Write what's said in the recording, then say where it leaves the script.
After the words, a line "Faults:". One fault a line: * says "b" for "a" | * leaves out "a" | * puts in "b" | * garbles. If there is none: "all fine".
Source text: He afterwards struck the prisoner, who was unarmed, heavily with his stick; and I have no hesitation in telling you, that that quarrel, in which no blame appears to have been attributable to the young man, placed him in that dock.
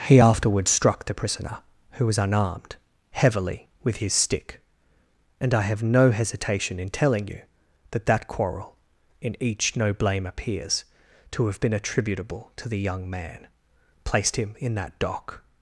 He afterwards struck the prisoner, who was unarmed, heavily with his stick; and I have no hesitation in telling you, that that quarrel, in each no blame appears to have been attributable to the young man, placed him in that dock.
Faults:
* says "each" for "which"